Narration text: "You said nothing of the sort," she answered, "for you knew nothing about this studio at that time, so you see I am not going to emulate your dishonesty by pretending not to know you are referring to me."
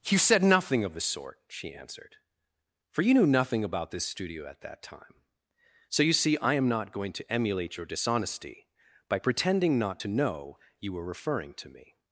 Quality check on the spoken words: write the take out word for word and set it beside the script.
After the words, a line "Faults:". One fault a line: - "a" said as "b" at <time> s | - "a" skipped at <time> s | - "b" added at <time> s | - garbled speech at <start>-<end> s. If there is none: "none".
"You said nothing of the sort," she answered, "for you knew nothing about this studio at that time, so you see I am not going to emulate your dishonesty by pretending not to know you were referring to me."
Faults:
- "are" said as "were" at 10.9 s